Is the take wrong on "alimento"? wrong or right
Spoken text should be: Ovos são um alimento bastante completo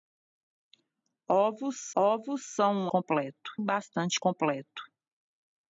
wrong